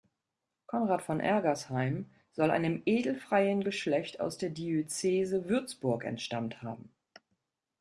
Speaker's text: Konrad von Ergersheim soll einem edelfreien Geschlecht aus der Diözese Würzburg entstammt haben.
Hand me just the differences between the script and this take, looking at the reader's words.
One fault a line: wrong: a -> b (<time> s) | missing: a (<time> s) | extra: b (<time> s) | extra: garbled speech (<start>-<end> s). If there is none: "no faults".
no faults